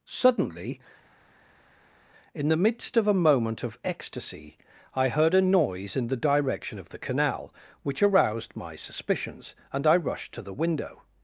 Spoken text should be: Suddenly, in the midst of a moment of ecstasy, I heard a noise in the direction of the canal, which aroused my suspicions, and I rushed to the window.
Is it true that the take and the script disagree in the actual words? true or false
false